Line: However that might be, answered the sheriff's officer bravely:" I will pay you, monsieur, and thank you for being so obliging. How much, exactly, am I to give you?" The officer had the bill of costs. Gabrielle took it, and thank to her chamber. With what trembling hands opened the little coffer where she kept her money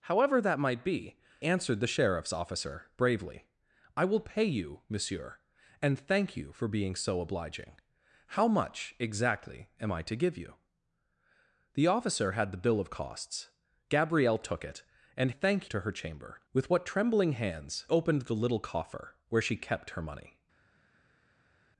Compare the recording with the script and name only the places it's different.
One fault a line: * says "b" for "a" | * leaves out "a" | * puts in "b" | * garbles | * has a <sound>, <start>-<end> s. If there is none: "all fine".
all fine